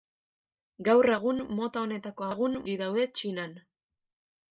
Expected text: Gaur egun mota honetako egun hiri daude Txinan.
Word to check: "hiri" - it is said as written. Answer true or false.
true